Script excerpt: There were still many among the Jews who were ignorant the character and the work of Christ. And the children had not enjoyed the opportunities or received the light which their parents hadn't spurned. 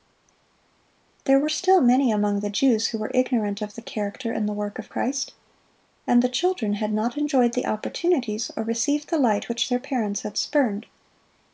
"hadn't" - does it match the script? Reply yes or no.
no